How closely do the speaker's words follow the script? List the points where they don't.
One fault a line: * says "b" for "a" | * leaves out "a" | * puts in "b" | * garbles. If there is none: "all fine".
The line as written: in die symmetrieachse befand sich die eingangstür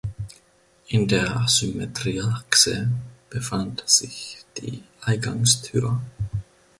* says "der" for "die"